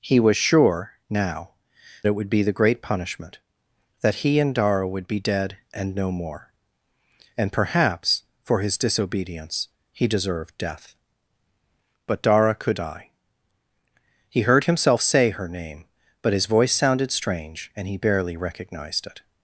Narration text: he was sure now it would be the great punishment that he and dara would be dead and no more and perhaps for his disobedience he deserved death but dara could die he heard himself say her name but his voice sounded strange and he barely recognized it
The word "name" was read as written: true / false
true